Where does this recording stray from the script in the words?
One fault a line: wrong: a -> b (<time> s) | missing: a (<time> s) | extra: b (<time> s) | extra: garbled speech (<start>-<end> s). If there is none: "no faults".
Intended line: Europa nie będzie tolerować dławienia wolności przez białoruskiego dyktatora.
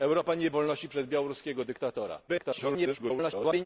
missing: będzie tolerować dławienia (0.5 s)
extra: garbled speech (2.3-3.7 s)